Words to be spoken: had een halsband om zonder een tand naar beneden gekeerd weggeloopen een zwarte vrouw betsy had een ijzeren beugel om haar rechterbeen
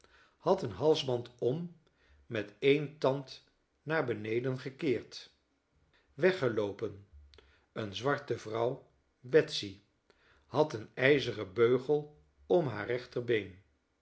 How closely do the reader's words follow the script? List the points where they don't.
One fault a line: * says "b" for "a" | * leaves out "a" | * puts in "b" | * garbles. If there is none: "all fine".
* says "met" for "zonder"